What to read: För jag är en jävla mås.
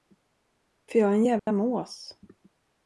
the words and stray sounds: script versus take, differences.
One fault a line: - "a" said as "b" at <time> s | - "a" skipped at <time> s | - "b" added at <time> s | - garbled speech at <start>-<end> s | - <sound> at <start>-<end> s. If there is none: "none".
- dropout at 1.4-1.5 s